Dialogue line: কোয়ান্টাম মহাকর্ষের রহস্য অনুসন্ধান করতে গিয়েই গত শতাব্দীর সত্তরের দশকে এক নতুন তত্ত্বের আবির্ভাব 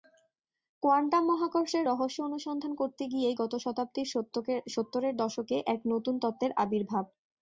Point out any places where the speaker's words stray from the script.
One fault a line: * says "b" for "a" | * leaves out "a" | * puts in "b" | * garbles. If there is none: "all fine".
all fine